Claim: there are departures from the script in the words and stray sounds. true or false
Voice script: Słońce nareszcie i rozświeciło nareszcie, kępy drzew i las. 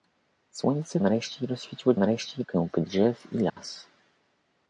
true